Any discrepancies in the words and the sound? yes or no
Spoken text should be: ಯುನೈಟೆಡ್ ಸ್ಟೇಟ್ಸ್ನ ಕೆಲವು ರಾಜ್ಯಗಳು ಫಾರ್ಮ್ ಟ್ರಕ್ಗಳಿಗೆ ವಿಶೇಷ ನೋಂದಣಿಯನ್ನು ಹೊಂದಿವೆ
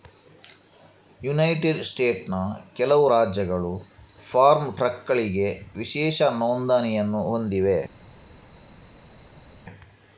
no